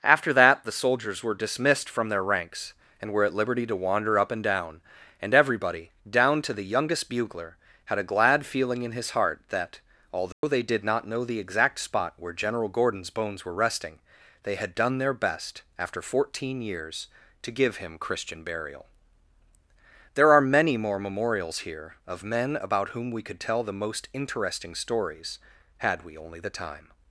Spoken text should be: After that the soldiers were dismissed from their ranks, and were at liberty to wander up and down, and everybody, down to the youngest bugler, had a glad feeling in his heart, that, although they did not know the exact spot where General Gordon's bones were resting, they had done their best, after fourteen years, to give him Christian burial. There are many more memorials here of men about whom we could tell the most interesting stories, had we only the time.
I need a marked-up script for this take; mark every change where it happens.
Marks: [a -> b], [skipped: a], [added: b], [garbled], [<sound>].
After that the soldiers were dismissed from their ranks, and were at liberty to wander up and down, and everybody, down to the youngest bugler, had a glad feeling in his heart, that, although [dropout] they did not know the exact spot where General Gordon's bones were resting, they had done their best, after fourteen years, to give him Christian burial. There are many more memorials here of men about whom we could tell the most interesting stories, had we only the time.